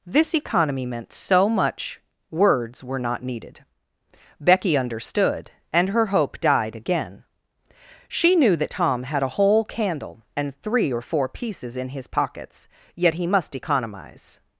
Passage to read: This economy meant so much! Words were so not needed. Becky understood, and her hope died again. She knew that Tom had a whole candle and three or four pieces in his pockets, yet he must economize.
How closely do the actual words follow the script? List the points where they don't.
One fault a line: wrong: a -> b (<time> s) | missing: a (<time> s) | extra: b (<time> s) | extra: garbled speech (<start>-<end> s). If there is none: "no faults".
missing: so (3.0 s)